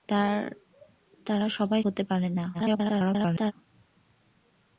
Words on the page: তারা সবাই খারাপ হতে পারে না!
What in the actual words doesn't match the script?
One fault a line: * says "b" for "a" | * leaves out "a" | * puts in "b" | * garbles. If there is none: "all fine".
* leaves out "খারাপ"
* garbles